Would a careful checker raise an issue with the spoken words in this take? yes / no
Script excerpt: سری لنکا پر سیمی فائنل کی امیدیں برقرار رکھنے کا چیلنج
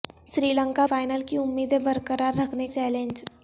yes